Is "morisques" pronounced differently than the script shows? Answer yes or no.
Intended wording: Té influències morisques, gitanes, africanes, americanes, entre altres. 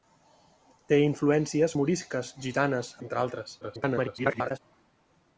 no